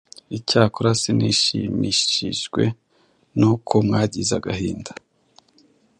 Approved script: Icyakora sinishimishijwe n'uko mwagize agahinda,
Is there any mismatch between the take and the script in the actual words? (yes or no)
no